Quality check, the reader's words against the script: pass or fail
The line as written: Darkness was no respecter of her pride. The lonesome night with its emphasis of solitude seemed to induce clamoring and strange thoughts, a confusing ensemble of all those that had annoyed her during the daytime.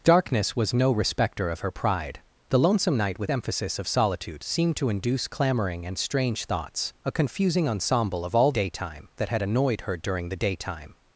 fail